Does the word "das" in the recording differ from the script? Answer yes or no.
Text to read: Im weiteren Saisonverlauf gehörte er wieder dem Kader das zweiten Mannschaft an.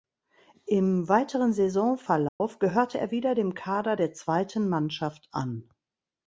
yes